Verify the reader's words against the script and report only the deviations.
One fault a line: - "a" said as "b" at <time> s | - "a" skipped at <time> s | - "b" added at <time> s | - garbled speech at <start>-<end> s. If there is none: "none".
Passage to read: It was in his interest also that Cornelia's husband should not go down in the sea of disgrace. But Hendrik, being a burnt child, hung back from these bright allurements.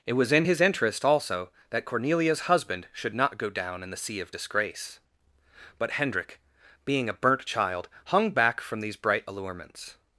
none